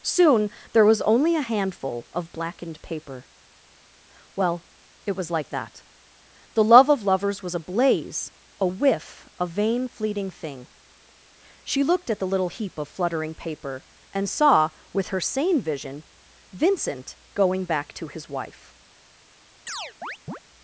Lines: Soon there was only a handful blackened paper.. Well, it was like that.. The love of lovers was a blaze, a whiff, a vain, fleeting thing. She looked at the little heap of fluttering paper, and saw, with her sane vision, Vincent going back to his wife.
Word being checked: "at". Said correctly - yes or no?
yes